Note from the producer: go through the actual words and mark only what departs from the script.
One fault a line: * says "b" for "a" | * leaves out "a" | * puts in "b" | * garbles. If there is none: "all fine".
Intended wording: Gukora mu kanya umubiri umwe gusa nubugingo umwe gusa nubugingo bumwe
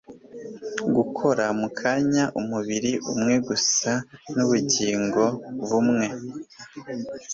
* leaves out "umwe gusa nubugingo"